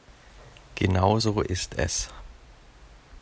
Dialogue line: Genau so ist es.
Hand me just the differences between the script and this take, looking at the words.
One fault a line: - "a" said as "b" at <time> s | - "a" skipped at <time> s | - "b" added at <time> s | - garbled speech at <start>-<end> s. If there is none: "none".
none